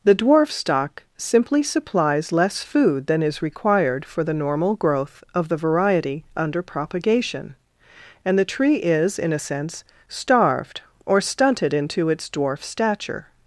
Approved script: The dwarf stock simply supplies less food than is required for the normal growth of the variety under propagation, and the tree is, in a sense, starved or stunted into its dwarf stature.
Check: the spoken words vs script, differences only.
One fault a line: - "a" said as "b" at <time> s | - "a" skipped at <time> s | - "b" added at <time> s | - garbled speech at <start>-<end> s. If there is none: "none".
none